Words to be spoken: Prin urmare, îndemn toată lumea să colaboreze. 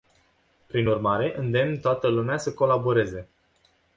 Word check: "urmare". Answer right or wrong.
right